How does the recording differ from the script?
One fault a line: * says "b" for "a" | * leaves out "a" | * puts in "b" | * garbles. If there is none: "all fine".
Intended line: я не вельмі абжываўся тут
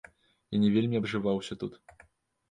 all fine